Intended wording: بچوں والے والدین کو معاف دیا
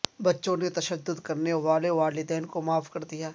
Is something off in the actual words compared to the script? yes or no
yes